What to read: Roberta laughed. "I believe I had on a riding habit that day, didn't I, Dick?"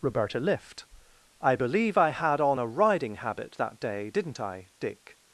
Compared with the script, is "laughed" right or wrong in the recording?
wrong